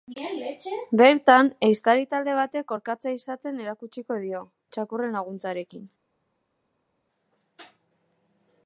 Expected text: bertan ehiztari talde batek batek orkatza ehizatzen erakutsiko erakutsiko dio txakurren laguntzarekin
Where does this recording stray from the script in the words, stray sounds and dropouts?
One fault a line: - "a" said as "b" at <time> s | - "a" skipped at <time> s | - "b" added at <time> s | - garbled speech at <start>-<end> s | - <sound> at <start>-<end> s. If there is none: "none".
- "batek" skipped at 2.7 s
- "erakutsiko" skipped at 4.2 s